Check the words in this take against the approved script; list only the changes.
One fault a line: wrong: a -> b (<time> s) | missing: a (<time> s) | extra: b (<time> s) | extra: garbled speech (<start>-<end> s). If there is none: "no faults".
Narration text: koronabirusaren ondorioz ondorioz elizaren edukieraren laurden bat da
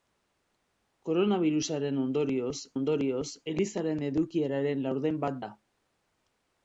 no faults